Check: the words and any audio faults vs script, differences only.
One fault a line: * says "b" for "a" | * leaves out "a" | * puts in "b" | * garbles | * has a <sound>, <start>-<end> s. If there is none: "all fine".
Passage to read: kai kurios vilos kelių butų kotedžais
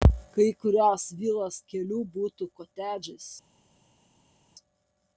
all fine